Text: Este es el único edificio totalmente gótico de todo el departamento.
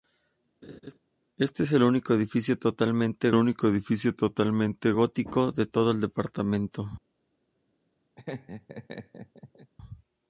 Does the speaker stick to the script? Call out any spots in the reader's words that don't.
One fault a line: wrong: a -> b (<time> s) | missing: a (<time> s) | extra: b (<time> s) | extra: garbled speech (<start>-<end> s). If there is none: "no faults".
extra: único edificio totalmente (3.3 s)